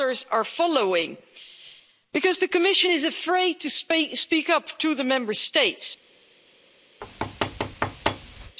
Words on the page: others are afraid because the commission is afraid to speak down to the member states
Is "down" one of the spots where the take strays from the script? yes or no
yes